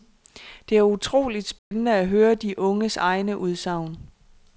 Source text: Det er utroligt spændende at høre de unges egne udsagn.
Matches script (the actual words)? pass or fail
pass